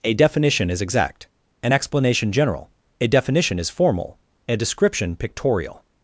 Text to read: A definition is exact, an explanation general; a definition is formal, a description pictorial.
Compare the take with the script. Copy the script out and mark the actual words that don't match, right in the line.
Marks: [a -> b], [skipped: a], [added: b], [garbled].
A definition is exact, an explanation general; a definition is formal, a description pictorial.